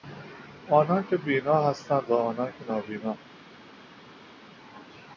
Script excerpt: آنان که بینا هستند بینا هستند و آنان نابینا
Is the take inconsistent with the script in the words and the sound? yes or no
yes